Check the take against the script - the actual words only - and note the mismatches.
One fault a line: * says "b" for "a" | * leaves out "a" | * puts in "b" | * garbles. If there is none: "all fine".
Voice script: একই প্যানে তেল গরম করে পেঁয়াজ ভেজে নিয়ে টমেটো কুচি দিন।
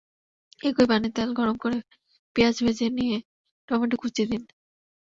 all fine